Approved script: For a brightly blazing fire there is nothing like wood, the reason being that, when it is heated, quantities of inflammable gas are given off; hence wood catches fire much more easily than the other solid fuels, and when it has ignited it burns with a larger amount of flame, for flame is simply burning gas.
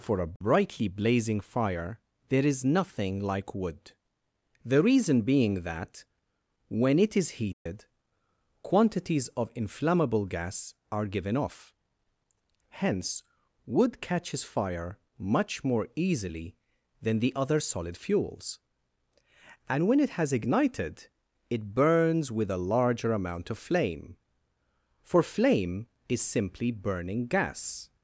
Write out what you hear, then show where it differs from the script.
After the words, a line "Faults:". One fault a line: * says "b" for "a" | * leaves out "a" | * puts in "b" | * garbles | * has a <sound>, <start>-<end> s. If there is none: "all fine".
For a brightly blazing fire there is nothing like wood, the reason being that, when it is heated, quantities of inflammable gas are given off; hence wood catches fire much more easily than the other solid fuels, and when it has ignited it burns with a larger amount of flame, for flame is simply burning gas.
Faults:
* has a dropout, 7.5-7.7 s